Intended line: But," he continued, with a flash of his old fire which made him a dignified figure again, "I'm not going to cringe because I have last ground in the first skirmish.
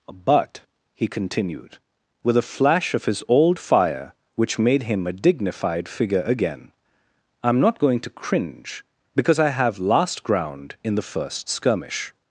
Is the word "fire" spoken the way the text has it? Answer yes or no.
yes